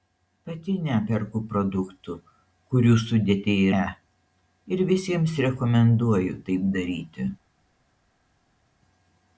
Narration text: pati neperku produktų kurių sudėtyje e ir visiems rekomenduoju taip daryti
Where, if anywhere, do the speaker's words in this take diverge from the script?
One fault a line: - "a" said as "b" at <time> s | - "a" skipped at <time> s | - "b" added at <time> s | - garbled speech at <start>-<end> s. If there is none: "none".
none